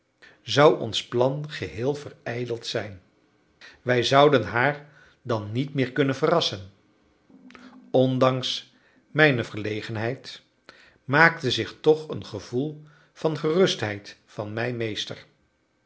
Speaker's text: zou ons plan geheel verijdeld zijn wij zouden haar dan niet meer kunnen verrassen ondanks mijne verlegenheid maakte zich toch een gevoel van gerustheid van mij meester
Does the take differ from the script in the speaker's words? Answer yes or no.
no